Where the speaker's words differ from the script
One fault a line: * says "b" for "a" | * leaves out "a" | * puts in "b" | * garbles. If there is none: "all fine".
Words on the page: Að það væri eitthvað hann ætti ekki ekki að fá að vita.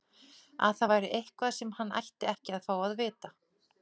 * puts in "sem"
* leaves out "ekki"